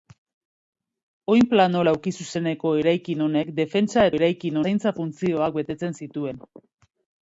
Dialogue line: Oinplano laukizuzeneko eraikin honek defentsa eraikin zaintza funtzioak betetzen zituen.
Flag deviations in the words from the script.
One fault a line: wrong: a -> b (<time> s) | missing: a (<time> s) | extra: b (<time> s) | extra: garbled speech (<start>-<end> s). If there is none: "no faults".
no faults